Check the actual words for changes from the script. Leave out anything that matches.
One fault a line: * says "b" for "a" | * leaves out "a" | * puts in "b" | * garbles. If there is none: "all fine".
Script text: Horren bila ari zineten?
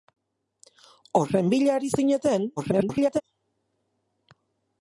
* garbles